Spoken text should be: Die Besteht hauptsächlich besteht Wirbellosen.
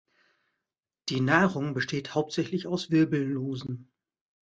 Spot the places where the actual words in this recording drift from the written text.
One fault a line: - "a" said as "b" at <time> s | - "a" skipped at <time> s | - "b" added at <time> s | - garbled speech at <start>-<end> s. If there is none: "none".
- "Nahrung" added at 1.2 s
- "besteht" said as "aus" at 2.7 s